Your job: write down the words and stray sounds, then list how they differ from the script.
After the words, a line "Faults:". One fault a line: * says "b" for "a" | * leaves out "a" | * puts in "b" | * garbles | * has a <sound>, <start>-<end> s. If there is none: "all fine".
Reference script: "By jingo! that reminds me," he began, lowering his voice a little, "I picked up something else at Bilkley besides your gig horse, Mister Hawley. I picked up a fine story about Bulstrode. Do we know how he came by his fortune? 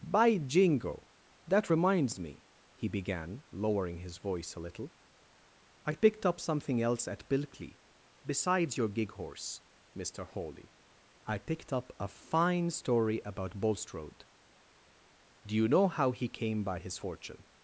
"By jingo! that reminds me," he began, lowering his voice a little, "I picked up something else at Bilkley besides your gig horse, Mister Hawley. I picked up a fine story about Bulstrode. Do you know how he came by his fortune?
Faults:
* says "you" for "we"